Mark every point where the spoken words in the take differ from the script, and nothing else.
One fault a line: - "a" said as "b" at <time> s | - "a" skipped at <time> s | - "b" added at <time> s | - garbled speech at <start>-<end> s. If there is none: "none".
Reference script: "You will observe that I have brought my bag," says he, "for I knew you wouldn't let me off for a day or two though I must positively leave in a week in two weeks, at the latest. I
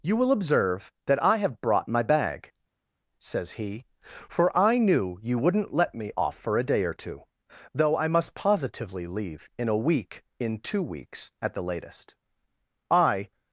none